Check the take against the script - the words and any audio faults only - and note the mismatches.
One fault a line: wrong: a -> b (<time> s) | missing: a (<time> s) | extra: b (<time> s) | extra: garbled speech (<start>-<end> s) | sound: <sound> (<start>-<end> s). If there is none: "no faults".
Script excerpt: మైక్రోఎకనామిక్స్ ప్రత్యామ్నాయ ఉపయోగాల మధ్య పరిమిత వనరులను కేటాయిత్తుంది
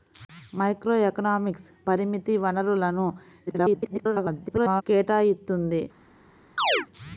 missing: ప్రత్యామ్నాయ ఉపయోగాల మధ్య (1.7 s)
extra: garbled speech (3.5-4.8 s)
sound: chirp (6.6-6.9 s)